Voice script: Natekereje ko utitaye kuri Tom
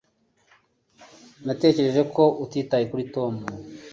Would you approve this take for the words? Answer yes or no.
yes